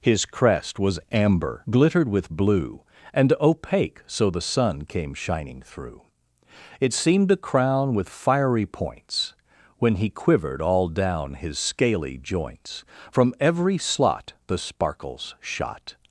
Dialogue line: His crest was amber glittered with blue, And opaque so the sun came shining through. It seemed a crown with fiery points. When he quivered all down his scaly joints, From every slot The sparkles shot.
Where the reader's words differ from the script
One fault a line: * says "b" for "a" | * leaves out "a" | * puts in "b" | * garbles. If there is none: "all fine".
all fine